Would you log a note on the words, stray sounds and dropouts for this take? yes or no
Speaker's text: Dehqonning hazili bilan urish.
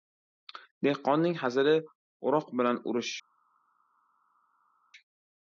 yes